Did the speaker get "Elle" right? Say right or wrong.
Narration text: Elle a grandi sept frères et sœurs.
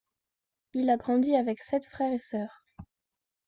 wrong